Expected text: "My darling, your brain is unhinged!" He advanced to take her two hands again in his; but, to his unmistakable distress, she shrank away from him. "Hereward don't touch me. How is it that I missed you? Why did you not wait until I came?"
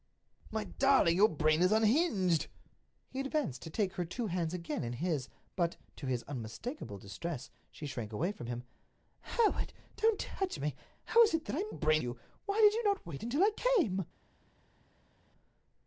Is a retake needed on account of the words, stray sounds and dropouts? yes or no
yes